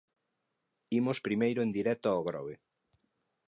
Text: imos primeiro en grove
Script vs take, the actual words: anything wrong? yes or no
yes